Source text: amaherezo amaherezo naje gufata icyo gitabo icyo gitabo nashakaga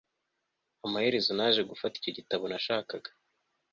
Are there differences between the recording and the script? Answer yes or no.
yes